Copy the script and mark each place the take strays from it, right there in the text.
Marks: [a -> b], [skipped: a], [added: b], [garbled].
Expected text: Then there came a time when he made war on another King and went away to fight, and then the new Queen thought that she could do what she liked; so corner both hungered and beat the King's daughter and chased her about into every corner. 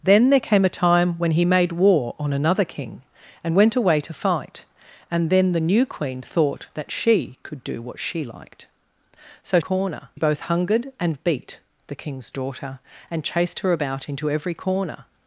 Then there came a time when he made war on another King and went away to fight, and then the new Queen thought that she could do what she liked; so corner both hungered and beat the King's daughter and chased her about into every corner.